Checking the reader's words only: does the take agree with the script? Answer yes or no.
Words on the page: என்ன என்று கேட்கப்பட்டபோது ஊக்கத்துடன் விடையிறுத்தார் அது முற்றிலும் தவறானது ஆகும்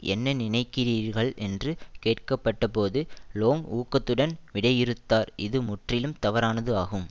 no